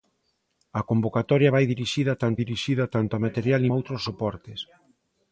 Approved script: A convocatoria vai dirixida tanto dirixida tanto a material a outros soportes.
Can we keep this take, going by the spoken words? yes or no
yes